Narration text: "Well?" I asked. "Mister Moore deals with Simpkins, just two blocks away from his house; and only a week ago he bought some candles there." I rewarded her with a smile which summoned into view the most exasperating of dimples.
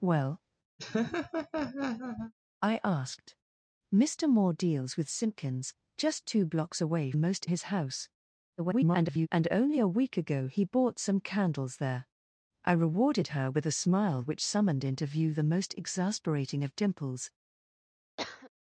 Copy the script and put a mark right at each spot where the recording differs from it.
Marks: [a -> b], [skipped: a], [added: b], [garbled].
"Well?" I asked. "Mister Moore deals with Simpkins, just two blocks away [from -> most] his house; [garbled] and only a week ago he bought some candles there." I rewarded her with a smile which summoned into view the most exasperating of dimples.